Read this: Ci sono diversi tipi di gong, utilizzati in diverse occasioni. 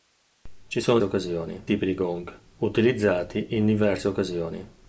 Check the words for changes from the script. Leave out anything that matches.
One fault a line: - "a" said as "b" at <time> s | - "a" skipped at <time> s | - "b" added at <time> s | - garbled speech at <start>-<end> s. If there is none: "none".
- "diversi" said as "occasioni" at 1.0 s